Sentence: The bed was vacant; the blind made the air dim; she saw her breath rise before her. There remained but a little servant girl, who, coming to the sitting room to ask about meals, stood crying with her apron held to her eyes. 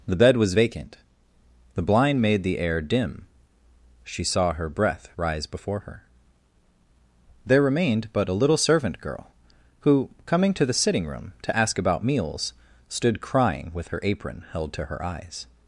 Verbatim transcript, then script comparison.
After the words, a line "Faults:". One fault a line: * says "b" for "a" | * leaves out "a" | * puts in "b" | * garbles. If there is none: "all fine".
The bed was vacant; the blind made the air dim; she saw her breath rise before her. There remained but a little servant girl, who, coming to the sitting room to ask about meals, stood crying with her apron held to her eyes.
Faults:
all fine